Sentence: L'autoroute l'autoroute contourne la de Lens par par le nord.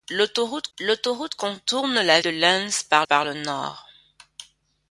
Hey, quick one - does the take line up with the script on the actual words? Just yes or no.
yes